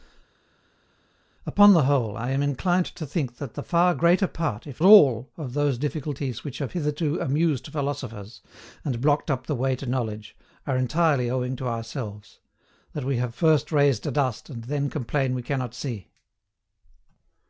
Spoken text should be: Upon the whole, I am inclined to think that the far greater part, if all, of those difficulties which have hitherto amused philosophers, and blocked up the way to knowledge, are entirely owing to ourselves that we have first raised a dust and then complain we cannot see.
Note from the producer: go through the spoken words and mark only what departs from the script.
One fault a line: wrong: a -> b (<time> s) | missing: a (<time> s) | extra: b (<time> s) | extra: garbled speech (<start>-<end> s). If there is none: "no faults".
no faults